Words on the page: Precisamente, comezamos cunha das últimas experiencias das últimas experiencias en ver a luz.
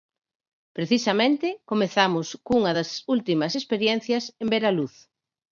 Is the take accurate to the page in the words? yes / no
no